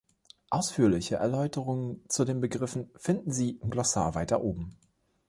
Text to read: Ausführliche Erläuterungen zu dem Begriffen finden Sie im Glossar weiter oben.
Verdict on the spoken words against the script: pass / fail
fail